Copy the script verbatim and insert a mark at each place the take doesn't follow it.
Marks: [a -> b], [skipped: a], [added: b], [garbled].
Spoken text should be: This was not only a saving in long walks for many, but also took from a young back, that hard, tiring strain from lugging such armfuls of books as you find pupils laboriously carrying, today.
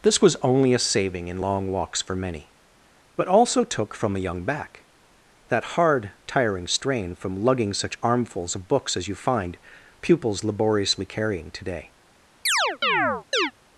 This was [skipped: not] only a saving in long walks for many, but also took from a young back, that hard, tiring strain from lugging such armfuls of books as you find pupils laboriously carrying, today.